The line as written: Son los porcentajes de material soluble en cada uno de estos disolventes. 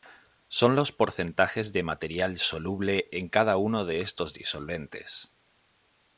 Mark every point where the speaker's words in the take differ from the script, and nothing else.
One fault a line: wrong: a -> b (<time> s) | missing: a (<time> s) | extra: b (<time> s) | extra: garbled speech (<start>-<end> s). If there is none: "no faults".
no faults